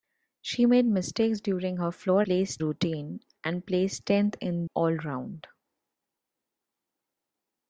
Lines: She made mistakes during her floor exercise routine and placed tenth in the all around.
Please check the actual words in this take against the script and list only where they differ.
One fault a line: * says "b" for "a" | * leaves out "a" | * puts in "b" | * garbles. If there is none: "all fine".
* says "placed" for "exercise"
* leaves out "the"